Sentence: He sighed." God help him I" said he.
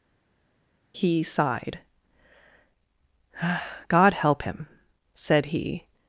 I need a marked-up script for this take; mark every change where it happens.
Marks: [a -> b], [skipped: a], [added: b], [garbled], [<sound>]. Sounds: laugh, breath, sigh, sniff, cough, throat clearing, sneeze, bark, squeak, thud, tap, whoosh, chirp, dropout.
He sighed." God help him [skipped: I"] said he.